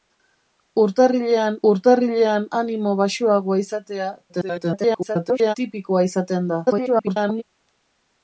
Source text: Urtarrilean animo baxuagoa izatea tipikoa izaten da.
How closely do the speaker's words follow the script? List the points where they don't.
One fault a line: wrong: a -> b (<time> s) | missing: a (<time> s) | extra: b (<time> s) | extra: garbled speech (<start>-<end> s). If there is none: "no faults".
extra: urtarrilean (1.7 s)
extra: garbled speech (4.3-5.5 s)
extra: garbled speech (6.7-7.4 s)